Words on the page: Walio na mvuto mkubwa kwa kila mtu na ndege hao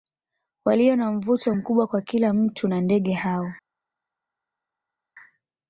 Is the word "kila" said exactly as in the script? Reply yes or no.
yes